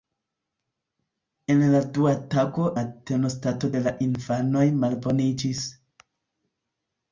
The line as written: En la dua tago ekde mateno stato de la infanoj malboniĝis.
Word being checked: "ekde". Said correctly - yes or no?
no